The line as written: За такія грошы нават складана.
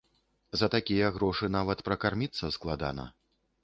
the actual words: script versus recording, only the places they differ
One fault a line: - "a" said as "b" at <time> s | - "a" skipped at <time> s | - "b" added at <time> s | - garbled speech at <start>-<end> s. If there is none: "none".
- "пракарміцца" added at 1.9 s